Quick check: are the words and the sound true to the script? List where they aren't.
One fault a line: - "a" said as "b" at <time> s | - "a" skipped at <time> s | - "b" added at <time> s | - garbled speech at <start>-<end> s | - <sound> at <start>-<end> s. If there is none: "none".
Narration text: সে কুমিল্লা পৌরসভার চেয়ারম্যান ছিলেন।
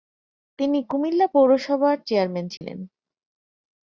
- "সে" said as "তিনি" at 0.6 s
- dropout at 2.6-2.6 s